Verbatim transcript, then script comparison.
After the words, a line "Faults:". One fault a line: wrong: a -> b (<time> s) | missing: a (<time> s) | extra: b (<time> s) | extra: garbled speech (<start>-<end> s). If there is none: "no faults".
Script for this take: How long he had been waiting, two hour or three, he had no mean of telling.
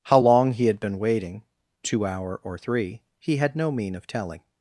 How long he had been waiting, two hour or three, he had no mean of telling.
Faults:
no faults